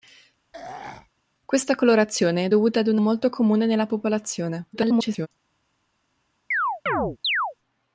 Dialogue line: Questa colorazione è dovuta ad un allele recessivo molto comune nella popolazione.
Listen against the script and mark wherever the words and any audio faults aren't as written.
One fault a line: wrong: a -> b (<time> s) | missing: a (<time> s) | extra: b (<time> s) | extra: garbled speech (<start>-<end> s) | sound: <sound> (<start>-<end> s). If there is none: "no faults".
sound: throat clearing (0.5-1.1 s)
missing: allele recessivo (3.0 s)
extra: garbled speech (4.7-5.3 s)
sound: chirp (6.5-7.5 s)